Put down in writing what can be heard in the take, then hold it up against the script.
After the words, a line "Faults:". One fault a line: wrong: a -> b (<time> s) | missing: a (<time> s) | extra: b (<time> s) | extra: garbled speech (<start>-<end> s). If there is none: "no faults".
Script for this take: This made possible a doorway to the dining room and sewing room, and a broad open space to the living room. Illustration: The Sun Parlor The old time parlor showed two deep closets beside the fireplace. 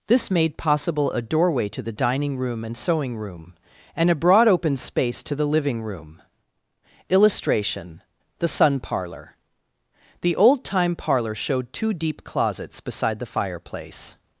This made possible a doorway to the dining room and sewing room, and a broad open space to the living room. Illustration: The Sun Parlor The old time parlor showed two deep closets beside the fireplace.
Faults:
no faults